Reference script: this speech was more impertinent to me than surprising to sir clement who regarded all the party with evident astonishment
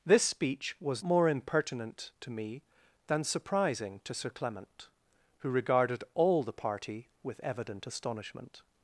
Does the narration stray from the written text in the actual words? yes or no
no